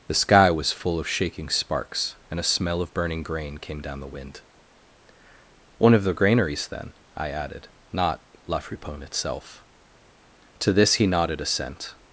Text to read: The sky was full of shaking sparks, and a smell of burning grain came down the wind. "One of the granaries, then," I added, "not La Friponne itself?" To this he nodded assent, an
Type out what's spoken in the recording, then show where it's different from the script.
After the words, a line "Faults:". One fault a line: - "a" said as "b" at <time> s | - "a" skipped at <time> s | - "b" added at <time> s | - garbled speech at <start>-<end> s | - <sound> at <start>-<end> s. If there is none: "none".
The sky was full of shaking sparks, and a smell of burning grain came down the wind. "One of the granaries, then," I added, "not La Friponne itself?" To this he nodded assent,
Faults:
- "an" skipped at 11.9 s